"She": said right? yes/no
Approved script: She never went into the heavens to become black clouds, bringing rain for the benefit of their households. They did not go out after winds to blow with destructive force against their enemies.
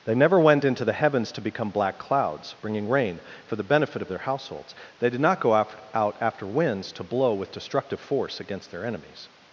no